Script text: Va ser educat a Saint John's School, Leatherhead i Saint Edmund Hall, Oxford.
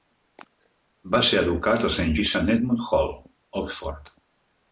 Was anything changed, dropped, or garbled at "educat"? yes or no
no